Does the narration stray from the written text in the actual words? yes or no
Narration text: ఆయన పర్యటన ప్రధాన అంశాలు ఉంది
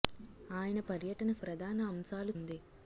no